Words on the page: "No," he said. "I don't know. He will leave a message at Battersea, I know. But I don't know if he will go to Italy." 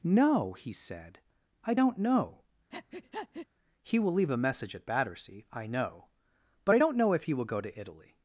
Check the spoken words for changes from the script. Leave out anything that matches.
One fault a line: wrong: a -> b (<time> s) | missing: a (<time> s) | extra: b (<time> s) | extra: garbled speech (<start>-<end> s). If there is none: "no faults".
no faults